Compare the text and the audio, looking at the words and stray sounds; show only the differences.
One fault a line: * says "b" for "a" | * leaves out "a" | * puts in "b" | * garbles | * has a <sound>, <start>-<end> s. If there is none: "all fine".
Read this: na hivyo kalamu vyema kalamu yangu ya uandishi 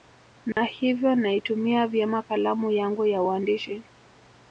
* has a dropout, 0.5-0.6 s
* says "naitumia" for "kalamu"